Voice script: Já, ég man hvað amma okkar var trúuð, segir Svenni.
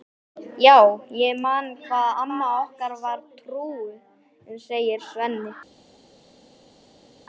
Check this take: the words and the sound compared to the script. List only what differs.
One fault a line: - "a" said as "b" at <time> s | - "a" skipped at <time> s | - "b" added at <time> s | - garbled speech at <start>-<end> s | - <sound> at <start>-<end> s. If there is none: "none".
none